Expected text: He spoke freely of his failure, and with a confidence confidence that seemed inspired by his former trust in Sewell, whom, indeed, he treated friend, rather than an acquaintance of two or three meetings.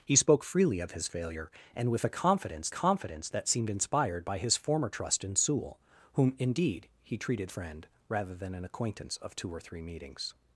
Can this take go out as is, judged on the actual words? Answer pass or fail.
pass